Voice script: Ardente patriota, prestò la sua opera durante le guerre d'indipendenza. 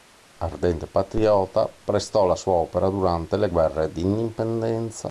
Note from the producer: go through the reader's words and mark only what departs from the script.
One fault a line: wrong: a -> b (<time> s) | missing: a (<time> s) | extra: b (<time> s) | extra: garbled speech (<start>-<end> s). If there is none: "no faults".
no faults